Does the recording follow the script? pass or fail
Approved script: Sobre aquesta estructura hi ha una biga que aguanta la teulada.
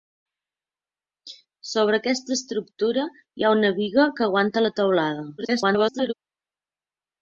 fail